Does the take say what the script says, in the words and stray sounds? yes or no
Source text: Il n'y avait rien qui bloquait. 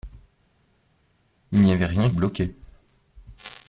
no